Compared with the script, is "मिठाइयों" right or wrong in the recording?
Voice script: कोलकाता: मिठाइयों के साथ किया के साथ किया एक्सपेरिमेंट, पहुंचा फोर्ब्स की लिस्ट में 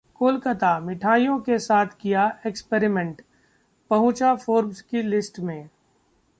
right